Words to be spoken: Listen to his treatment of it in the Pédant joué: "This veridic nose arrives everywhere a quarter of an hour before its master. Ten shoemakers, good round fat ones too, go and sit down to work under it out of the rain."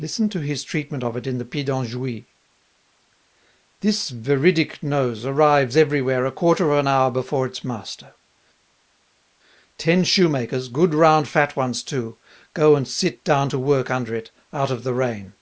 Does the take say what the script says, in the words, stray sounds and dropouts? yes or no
yes